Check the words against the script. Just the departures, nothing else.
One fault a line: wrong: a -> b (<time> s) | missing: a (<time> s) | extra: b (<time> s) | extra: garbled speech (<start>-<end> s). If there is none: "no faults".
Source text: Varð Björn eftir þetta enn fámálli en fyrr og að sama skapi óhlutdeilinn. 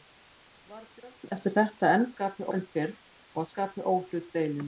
wrong: fámálli -> skapi (2.1 s)
missing: sama (3.5 s)